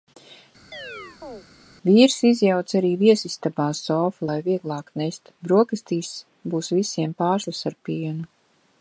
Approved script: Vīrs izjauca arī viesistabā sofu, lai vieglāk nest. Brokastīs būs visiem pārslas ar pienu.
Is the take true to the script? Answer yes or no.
yes